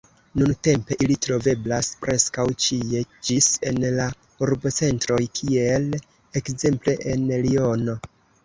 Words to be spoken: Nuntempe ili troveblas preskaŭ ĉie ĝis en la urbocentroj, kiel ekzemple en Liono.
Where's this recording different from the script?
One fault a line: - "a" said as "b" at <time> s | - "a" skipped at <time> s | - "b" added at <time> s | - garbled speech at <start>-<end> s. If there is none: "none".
none